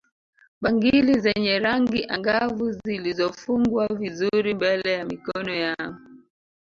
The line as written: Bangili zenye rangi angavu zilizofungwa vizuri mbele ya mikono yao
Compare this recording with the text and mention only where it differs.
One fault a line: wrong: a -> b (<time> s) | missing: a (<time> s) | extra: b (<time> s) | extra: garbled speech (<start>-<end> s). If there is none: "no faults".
no faults